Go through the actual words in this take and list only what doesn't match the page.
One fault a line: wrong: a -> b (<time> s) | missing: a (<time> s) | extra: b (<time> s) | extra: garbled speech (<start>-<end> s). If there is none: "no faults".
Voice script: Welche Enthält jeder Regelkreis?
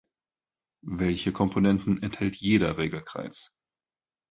extra: Komponenten (1.3 s)